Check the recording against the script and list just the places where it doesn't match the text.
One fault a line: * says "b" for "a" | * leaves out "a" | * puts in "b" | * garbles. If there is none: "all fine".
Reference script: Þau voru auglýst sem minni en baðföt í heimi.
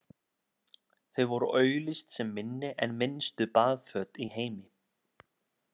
* puts in "minnstu"